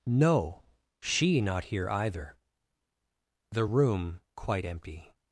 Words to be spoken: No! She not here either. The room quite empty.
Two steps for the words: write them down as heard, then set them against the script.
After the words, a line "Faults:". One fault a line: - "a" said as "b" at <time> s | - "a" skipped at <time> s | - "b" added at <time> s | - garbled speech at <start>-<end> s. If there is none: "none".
No! She not here either. The room quite empty.
Faults:
none